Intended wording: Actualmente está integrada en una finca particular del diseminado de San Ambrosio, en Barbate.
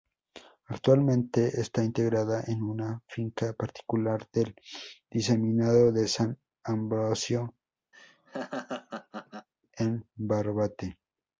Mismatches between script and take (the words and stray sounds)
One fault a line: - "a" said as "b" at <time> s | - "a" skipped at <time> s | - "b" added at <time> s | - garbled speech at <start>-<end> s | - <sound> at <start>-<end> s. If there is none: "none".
- laugh at 7.9-9.5 s